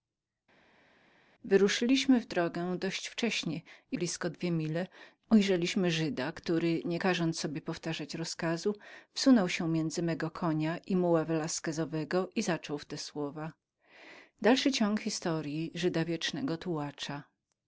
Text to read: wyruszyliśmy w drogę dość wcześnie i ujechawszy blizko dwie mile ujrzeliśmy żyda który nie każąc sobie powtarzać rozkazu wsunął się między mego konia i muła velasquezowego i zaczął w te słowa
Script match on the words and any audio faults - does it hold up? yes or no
no